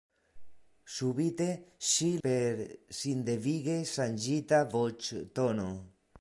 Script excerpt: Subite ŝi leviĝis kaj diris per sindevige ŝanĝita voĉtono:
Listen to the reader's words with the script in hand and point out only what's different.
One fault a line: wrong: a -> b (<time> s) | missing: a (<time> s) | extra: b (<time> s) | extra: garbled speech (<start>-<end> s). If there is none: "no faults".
missing: leviĝis kaj diris (2.1 s)